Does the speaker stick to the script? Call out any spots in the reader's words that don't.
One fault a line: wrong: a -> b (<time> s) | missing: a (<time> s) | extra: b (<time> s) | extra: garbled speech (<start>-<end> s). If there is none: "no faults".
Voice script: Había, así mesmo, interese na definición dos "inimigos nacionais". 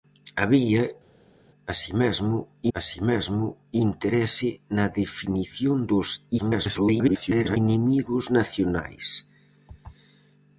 extra: así mesmo (2.8 s)
extra: garbled speech (6.4-7.6 s)